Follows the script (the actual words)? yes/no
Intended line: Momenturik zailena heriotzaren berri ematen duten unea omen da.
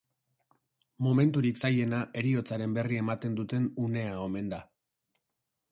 yes